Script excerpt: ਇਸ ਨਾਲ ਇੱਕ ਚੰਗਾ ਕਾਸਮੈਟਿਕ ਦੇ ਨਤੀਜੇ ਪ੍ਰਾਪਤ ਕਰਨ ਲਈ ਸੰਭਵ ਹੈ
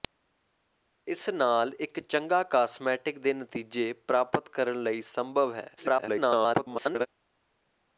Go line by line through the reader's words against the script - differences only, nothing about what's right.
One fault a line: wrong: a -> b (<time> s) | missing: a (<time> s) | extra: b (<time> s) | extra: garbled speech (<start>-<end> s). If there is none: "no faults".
extra: garbled speech (5.8-7.1 s)